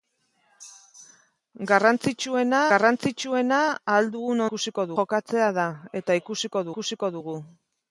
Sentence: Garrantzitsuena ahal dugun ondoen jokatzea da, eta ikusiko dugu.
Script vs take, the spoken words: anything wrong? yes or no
yes